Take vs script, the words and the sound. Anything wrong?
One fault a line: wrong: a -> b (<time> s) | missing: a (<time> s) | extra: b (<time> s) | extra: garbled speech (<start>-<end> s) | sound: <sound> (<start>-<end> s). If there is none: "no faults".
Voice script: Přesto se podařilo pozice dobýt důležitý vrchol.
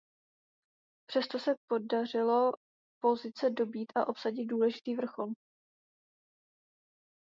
extra: a obsadit (3.9 s)